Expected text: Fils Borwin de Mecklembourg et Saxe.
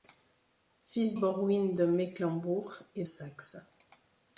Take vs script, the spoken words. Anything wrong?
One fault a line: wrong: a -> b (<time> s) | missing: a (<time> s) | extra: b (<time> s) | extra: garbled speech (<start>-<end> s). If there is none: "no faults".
no faults